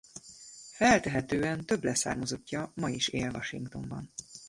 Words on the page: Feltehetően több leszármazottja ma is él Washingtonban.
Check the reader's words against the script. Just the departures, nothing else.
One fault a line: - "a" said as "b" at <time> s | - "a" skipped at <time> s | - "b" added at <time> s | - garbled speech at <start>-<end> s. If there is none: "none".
none